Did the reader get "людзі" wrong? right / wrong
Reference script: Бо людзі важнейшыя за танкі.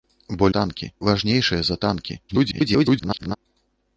wrong